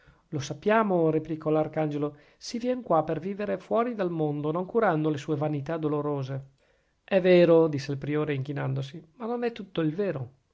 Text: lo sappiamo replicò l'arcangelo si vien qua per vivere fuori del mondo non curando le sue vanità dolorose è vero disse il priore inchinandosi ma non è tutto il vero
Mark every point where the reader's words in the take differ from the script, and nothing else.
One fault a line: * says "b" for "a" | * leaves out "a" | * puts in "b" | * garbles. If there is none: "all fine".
all fine